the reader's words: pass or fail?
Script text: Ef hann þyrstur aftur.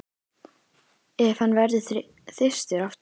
fail